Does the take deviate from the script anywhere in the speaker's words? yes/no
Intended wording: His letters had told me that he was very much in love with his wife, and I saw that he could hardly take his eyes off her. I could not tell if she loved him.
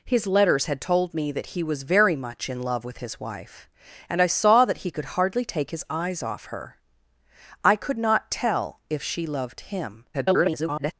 yes